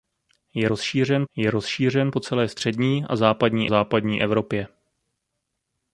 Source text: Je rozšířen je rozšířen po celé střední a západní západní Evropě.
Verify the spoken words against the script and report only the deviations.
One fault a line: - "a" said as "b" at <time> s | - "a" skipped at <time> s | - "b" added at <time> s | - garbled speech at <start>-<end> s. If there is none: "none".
none